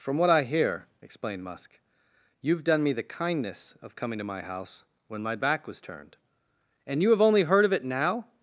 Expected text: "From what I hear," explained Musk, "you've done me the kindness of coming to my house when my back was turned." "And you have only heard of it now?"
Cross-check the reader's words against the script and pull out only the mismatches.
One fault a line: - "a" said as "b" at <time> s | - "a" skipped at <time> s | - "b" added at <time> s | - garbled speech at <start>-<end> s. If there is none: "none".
none